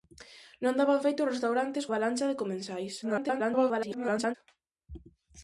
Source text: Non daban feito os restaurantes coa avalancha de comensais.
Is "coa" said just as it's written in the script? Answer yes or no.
no